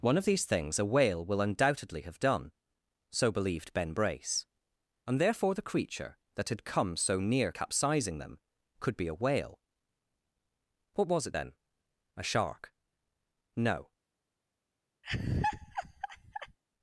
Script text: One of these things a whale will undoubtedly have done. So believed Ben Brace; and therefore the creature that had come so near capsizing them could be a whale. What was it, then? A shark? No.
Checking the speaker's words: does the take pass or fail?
pass